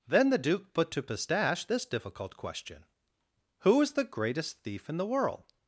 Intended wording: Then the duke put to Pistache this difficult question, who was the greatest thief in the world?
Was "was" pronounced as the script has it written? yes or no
no